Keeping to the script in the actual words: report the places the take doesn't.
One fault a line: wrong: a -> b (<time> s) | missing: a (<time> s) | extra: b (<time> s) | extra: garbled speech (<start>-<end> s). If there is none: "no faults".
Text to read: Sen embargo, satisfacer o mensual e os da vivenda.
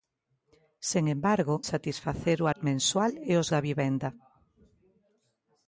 no faults